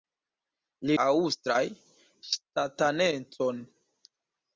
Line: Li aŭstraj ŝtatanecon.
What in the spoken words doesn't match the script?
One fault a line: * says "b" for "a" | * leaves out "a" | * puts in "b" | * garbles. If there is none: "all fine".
all fine